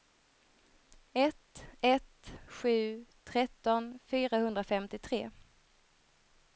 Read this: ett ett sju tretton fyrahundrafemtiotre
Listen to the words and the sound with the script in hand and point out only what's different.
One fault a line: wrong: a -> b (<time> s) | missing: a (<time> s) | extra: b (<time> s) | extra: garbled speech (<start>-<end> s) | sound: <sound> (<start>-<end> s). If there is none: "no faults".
no faults